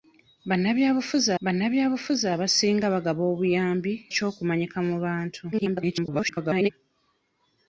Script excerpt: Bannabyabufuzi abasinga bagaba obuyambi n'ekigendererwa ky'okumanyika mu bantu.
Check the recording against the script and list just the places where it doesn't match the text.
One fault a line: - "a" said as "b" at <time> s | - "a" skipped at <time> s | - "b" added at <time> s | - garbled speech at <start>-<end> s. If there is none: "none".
- "bannabyabufuzi" added at 1.4 s
- "n'ekigendererwa" skipped at 3.9 s
- garbled speech at 5.5-6.7 s